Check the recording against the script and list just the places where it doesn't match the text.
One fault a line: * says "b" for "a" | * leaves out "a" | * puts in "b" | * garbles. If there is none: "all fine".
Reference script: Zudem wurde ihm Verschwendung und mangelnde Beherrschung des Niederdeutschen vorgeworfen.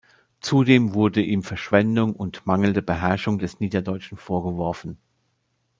all fine